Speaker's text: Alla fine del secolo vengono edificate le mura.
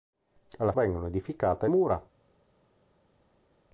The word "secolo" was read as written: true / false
false